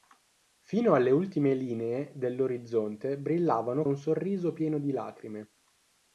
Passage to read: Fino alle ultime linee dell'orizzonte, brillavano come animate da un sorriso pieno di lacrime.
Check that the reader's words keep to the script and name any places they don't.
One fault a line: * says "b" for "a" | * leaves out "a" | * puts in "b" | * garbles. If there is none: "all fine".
* leaves out "come animate da"